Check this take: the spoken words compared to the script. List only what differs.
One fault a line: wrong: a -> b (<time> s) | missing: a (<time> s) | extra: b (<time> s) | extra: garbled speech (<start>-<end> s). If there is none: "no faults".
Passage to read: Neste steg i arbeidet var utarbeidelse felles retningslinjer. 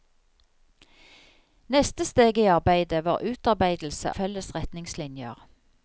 no faults